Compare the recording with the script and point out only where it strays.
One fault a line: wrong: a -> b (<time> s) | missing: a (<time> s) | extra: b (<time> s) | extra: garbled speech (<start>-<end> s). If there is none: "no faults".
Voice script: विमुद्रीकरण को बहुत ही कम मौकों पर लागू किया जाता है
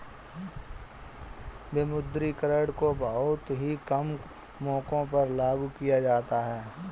no faults